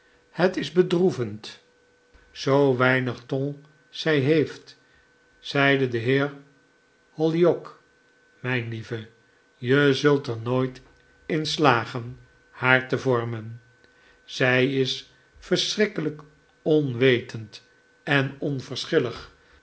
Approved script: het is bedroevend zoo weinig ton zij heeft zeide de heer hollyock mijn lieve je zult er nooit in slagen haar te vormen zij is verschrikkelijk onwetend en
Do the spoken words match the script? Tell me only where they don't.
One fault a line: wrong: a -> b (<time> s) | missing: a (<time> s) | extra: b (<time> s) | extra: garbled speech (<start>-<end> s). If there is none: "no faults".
no faults